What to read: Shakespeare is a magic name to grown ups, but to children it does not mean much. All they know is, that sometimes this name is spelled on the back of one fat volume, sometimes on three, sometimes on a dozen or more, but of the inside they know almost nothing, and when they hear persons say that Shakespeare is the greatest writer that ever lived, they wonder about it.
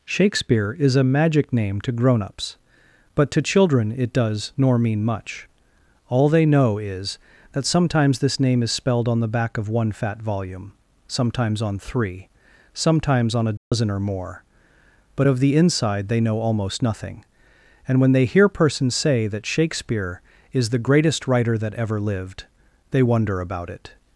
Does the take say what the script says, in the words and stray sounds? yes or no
no